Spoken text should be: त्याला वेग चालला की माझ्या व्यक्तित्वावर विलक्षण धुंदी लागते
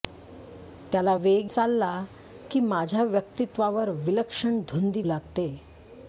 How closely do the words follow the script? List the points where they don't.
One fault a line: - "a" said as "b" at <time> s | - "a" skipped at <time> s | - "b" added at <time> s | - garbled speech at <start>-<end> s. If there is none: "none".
none